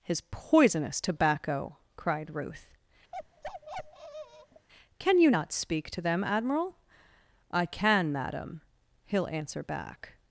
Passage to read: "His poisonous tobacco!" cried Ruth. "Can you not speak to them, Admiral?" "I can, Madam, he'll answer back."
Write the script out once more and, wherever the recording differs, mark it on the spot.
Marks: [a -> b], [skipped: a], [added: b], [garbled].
"His poisonous tobacco!" cried Ruth. "Can you not speak to them, Admiral?" "I can, Madam, he'll answer back."